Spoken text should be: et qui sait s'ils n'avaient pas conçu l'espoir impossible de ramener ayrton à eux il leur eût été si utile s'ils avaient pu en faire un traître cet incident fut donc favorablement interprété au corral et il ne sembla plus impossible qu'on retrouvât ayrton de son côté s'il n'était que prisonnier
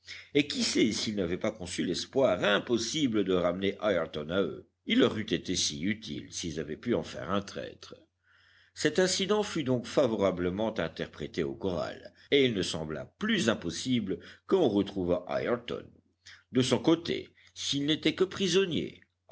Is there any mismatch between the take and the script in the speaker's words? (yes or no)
no